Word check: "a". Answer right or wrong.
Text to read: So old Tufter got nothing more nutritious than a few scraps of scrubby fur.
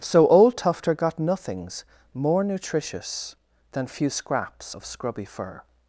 wrong